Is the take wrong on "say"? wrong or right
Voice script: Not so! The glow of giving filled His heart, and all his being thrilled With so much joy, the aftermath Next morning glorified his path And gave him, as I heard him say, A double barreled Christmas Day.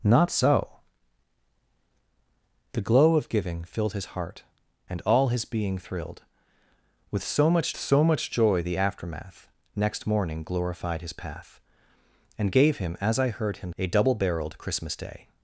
wrong